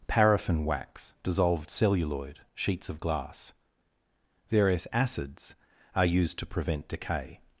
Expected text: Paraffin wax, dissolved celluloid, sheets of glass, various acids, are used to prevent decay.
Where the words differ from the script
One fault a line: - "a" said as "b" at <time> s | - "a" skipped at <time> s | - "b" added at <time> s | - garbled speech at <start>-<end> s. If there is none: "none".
none